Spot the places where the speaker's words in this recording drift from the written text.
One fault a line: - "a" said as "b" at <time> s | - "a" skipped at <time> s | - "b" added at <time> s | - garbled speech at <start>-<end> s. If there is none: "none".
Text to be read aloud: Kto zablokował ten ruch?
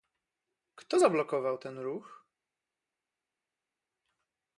none